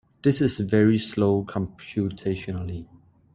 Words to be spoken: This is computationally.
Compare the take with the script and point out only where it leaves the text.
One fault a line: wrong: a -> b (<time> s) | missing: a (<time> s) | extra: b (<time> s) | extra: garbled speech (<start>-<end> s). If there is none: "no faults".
extra: very slow (0.6 s)